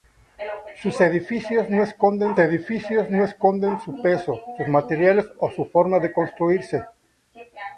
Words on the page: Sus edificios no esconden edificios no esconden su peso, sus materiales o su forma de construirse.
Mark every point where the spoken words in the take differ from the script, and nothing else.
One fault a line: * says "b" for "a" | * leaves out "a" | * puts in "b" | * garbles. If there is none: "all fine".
all fine